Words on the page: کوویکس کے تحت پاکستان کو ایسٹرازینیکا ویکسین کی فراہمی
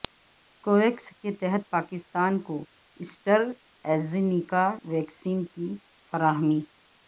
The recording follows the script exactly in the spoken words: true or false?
true